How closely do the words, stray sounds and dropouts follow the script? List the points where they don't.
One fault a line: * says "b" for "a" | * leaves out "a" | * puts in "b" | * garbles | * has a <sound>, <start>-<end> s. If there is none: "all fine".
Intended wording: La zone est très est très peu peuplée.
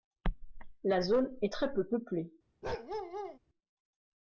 * leaves out "est très"
* has a bark, 2.6-3.4 s